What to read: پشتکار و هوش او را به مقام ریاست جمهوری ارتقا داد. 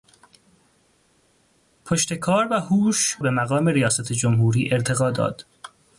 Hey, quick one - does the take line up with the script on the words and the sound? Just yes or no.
no